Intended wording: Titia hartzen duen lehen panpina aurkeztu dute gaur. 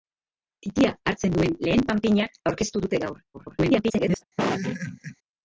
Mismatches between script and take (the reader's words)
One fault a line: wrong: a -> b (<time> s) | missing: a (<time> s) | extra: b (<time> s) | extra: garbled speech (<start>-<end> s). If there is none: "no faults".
extra: garbled speech (3.3-4.2 s)